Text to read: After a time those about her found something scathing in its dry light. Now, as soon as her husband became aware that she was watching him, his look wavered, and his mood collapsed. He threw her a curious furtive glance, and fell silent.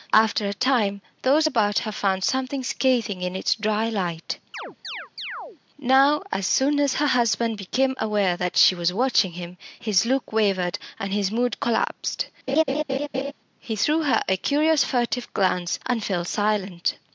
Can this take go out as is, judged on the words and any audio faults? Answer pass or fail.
fail